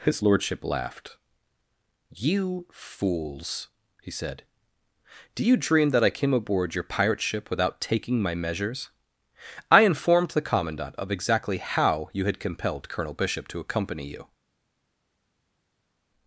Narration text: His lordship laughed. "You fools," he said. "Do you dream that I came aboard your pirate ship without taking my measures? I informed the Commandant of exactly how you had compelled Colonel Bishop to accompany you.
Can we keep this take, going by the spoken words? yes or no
yes